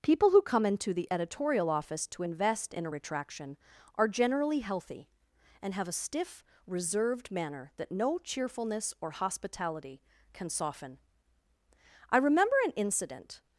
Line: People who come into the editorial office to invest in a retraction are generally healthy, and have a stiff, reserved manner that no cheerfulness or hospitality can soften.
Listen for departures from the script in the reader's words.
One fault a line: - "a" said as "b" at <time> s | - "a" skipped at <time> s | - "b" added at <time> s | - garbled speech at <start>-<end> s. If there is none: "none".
- "I remember an incident" added at 12.1 s